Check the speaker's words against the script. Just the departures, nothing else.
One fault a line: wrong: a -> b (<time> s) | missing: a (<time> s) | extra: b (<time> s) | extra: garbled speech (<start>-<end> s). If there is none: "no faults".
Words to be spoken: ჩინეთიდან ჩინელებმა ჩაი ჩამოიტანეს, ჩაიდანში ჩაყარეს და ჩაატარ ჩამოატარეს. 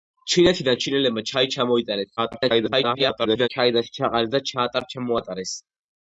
extra: garbled speech (2.2-3.5 s)